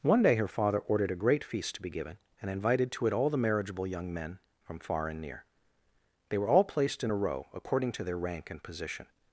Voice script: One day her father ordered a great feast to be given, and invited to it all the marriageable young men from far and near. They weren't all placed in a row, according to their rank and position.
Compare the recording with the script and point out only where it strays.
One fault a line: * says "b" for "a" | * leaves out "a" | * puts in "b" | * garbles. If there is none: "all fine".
* says "were" for "weren't"